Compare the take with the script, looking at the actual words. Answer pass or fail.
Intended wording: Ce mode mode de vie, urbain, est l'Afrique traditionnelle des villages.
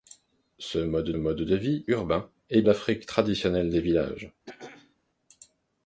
pass